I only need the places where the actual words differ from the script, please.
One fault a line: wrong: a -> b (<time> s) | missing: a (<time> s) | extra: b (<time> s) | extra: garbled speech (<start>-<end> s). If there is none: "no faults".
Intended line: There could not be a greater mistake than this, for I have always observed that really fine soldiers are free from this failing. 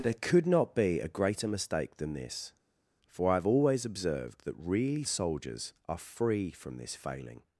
missing: fine (5.0 s)